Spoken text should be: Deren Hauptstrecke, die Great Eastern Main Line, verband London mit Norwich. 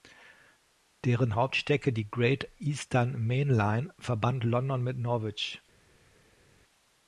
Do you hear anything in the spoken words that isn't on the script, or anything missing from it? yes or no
no